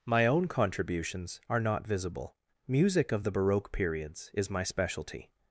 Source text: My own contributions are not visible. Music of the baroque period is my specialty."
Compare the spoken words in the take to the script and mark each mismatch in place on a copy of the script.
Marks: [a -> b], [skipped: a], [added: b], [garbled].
My own contributions are not visible. Music of the baroque [period -> periods] is my specialty."